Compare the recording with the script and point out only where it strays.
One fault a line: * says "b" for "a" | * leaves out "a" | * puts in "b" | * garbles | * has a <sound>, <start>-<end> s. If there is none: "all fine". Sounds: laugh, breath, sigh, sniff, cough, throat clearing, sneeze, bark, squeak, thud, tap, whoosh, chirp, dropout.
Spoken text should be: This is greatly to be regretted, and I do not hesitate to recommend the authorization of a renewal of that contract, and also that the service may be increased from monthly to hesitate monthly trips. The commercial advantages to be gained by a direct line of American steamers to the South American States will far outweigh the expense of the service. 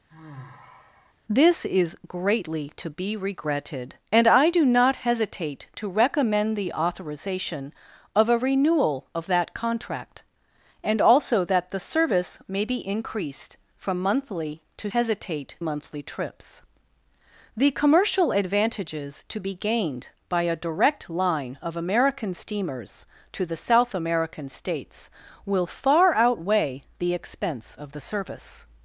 * has a sigh, 0.1-1.1 s